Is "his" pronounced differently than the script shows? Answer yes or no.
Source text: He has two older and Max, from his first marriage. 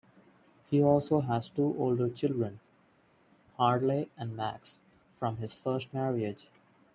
no